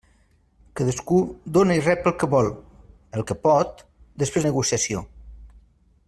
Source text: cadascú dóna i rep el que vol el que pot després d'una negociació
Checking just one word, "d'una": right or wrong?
wrong